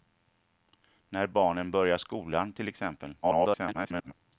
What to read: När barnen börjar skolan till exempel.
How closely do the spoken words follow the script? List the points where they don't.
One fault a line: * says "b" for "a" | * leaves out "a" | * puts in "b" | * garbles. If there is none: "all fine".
* garbles